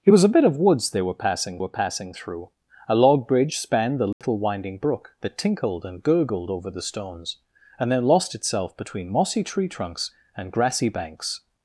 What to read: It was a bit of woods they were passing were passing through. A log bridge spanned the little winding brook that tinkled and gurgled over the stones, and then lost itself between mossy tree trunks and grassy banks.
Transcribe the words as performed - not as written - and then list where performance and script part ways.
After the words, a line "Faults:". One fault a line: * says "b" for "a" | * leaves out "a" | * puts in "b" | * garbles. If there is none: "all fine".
It was a bit of woods they were passing were passing through. A log bridge spanned the little winding brook that tinkled and gurgled over the stones, and then lost itself between mossy tree trunks and grassy banks.
Faults:
all fine